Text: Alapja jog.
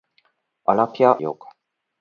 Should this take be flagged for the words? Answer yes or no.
no